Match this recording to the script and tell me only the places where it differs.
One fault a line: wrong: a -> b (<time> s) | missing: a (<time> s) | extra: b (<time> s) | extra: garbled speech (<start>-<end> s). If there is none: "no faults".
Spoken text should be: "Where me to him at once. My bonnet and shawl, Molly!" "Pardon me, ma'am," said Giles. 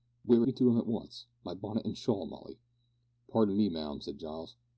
no faults